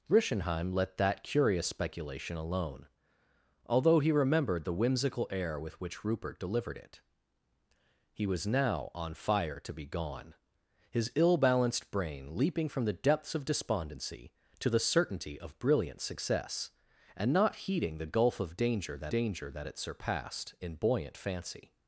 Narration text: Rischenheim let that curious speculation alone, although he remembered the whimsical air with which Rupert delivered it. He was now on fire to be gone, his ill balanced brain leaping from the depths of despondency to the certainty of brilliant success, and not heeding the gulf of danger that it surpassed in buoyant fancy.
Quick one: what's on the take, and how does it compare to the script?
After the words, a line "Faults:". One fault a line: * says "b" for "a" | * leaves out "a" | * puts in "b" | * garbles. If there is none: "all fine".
Rischenheim let that curious speculation alone, although he remembered the whimsical air with which Rupert delivered it. He was now on fire to be gone, his ill balanced brain leaping from the depths of despondency to the certainty of brilliant success, and not heeding the gulf of danger that danger that it surpassed in buoyant fancy.
Faults:
* puts in "danger that"